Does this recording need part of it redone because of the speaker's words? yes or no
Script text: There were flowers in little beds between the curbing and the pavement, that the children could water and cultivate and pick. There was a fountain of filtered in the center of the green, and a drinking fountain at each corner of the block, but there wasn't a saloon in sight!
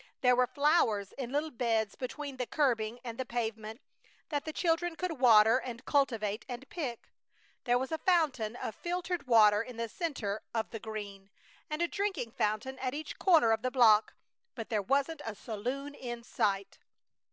yes